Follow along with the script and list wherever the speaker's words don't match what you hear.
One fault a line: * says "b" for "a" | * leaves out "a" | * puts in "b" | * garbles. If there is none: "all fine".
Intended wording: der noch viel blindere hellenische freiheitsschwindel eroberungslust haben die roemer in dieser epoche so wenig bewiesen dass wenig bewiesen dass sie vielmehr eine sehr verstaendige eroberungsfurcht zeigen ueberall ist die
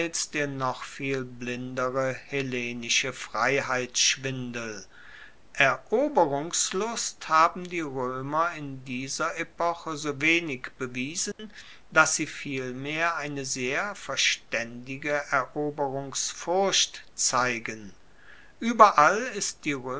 * leaves out "wenig bewiesen dass"